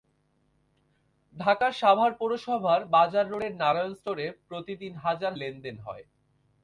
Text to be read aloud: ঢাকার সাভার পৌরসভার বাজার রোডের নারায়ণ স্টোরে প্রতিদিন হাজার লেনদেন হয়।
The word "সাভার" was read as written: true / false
true